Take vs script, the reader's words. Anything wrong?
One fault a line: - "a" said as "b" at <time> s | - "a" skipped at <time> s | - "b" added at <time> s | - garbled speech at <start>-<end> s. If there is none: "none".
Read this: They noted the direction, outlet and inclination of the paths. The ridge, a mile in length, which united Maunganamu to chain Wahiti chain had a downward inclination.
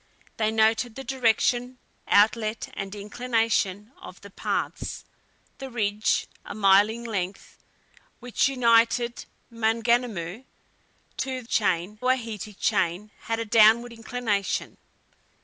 none